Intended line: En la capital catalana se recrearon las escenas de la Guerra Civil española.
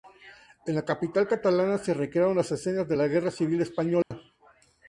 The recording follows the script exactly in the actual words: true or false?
true